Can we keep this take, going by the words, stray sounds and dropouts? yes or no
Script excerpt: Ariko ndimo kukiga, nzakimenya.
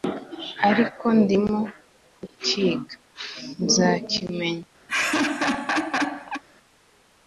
no